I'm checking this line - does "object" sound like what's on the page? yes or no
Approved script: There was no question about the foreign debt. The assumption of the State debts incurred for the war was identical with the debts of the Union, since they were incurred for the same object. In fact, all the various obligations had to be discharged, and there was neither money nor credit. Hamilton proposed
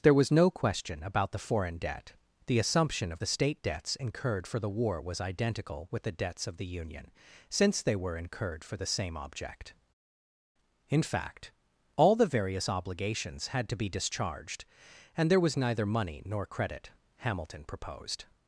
yes